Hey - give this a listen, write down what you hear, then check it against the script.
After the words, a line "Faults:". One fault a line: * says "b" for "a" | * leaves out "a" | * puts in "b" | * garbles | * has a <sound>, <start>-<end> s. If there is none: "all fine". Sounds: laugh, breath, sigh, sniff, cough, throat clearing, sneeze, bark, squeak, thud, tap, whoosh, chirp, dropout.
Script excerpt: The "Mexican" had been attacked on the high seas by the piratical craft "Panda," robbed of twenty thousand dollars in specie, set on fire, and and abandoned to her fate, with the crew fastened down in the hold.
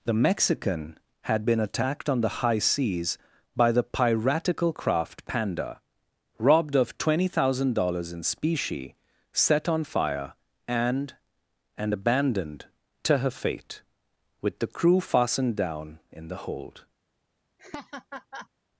The "Mexican" had been attacked on the high seas by the piratical craft "Panda," robbed of twenty thousand dollars in specie, set on fire, and and abandoned to her fate, with the crew fastened down in the hold.
Faults:
* has a laugh, 17.6-18.5 s